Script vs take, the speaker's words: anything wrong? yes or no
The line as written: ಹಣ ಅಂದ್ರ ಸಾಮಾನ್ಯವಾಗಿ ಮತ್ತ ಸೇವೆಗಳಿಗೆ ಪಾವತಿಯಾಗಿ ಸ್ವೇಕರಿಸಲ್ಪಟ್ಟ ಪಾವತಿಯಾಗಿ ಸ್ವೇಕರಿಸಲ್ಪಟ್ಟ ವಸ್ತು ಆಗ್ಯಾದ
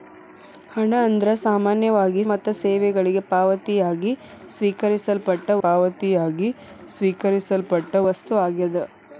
no